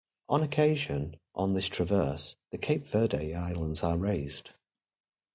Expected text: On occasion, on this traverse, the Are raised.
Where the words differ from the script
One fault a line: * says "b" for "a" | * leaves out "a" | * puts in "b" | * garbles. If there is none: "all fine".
* puts in "Cape Verde Islands"